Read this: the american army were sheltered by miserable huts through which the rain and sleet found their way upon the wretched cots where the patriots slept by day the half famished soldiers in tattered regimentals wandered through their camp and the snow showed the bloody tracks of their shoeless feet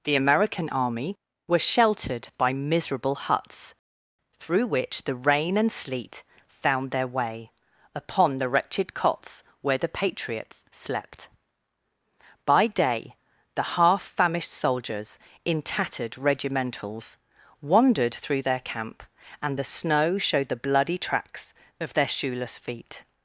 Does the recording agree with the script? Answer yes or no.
yes